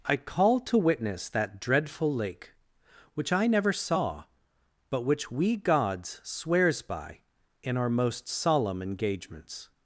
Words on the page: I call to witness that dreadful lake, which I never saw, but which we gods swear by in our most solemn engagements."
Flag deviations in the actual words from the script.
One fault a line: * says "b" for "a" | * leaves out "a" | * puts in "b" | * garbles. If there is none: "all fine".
* says "swears" for "swear"